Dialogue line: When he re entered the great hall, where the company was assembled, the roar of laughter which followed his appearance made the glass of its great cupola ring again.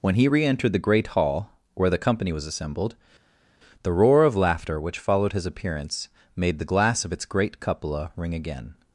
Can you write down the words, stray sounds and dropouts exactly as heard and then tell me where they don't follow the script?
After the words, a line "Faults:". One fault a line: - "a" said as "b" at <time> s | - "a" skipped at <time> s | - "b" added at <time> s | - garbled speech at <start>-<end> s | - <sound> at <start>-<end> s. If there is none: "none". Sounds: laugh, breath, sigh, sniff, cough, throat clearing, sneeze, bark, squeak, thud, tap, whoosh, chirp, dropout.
When he re entered the great hall, where the company was assembled, the roar of laughter which followed his appearance made the glass of its great cupola ring again.
Faults:
none